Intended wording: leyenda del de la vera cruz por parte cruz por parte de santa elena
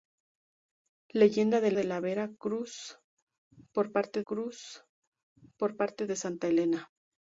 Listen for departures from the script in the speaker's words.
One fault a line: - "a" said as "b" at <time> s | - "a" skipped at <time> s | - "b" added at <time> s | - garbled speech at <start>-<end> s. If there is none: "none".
none